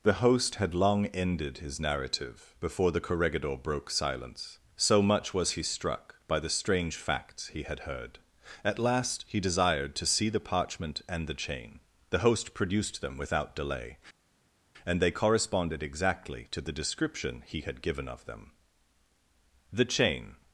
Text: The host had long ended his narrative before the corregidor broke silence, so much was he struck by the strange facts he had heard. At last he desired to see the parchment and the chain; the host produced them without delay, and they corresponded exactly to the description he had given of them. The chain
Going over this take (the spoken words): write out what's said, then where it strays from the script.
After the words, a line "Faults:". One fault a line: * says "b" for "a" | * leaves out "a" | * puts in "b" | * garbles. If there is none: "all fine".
The host had long ended his narrative before the corregidor broke silence, so much was he struck by the strange facts he had heard. At last he desired to see the parchment and the chain; the host produced them without delay, and they corresponded exactly to the description he had given of them. The chain
Faults:
all fine